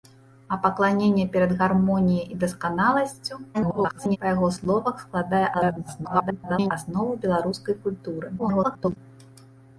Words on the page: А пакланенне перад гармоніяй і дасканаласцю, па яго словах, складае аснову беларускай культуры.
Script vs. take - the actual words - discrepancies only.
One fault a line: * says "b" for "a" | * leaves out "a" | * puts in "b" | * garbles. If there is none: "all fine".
* garbles
* garbles
* garbles